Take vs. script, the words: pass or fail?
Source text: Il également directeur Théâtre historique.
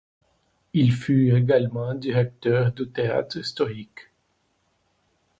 fail